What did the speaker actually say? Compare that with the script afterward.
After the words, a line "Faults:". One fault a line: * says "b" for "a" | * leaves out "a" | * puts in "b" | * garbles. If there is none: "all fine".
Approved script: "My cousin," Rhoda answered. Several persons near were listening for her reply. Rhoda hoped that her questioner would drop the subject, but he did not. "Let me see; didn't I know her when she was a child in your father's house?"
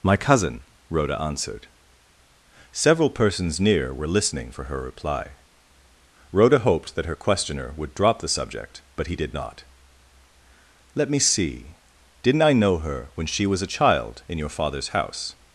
"My cousin," Rhoda answered. Several persons near were listening for her reply. Rhoda hoped that her questioner would drop the subject, but he did not. "Let me see; didn't I know her when she was a child in your father's house?"
Faults:
all fine